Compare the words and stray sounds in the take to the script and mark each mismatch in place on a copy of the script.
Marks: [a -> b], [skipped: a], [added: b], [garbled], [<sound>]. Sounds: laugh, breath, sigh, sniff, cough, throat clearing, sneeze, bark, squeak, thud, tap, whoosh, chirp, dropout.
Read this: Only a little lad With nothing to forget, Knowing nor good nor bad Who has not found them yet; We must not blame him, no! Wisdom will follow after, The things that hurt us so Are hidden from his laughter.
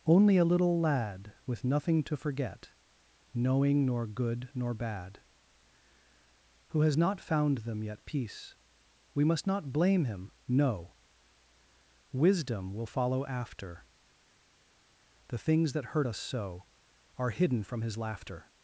Only a little lad With nothing to forget, Knowing nor good nor bad Who has not found them yet; [added: peace] We must not blame him, no! Wisdom will follow after, The things that hurt us so Are hidden from his laughter.